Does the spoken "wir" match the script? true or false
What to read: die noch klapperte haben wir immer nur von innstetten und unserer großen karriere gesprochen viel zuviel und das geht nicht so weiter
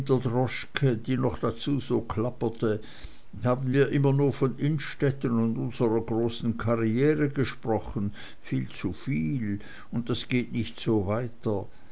true